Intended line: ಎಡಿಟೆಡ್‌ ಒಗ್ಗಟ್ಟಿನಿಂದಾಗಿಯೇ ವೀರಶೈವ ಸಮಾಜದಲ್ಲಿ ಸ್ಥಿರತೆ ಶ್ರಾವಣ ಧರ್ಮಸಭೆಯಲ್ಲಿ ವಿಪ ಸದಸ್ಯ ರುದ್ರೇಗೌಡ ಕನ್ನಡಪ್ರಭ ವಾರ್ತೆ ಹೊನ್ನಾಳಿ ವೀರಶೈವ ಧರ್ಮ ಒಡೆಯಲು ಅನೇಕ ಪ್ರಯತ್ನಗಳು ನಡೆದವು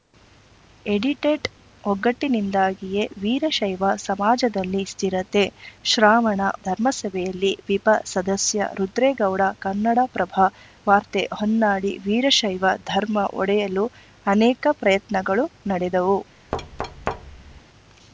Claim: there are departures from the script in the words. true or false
false